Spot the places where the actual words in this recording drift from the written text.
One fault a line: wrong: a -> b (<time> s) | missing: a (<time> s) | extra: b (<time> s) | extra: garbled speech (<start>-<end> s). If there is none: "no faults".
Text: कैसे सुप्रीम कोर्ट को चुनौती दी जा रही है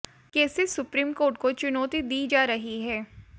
no faults